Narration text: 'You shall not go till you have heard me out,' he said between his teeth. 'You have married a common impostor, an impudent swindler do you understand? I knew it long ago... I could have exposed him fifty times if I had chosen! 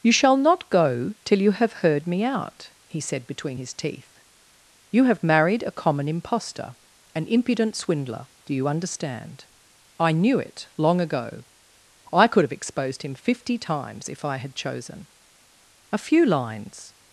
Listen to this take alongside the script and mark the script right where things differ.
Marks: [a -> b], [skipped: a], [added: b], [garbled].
'You shall not go till you have heard me out,' he said between his teeth. 'You have married a common impostor, an impudent swindler do you understand? I knew it long ago... I could have exposed him fifty times if I had chosen! [added: A few lines]